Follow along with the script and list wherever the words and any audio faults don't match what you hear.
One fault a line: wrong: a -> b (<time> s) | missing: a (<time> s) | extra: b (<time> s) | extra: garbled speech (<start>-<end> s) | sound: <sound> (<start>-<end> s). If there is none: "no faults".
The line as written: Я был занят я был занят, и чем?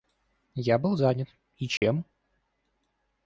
missing: я был занят (1.3 s)
sound: dropout (1.8-1.8 s)